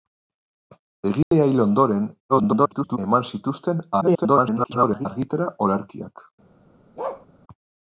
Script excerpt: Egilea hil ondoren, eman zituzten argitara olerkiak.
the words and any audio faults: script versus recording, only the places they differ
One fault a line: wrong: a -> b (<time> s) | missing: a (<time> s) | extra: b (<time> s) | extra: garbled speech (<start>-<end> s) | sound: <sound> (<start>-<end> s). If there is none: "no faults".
sound: dropout (1.2-1.3 s)
extra: garbled speech (2.3-3.0 s)
extra: garbled speech (4.0-5.1 s)
sound: bark (7.0-7.3 s)